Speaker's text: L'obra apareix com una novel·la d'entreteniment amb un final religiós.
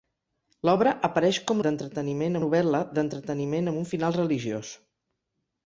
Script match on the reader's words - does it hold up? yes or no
no